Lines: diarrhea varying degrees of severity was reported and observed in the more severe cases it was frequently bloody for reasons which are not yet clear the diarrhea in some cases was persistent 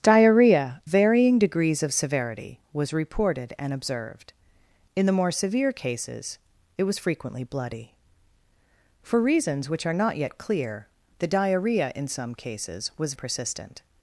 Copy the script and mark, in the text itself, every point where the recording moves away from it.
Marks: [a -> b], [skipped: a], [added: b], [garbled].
diarrhea varying degrees of severity was reported and observed in the more severe cases it was frequently bloody for reasons which are not yet clear the diarrhea in some cases was persistent